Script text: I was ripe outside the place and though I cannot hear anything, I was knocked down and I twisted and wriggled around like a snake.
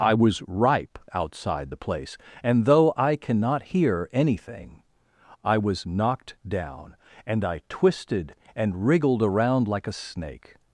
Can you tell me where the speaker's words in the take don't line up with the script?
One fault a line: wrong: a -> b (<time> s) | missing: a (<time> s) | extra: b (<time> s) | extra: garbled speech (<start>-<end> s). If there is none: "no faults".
no faults